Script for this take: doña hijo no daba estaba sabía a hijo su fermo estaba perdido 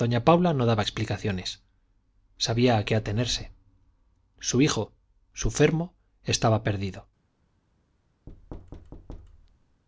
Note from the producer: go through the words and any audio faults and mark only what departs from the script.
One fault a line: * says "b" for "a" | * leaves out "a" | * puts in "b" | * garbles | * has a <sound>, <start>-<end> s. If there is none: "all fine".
* says "paula" for "hijo"
* says "explicaciones" for "estaba"
* puts in "qué atenerse su"
* has a thud, 8.3-9.8 s